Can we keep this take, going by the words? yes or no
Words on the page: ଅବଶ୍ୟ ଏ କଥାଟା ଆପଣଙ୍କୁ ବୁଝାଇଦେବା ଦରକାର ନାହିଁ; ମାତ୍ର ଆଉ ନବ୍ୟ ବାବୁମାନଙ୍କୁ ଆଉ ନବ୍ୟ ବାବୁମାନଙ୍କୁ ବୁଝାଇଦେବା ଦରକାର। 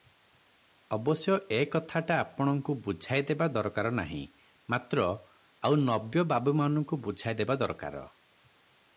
no